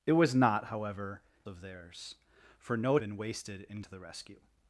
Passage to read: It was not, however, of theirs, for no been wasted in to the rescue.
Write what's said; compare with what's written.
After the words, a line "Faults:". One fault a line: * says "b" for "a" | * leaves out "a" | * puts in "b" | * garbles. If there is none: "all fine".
It was not, however, of theirs, for no been wasted in to the rescue.
Faults:
all fine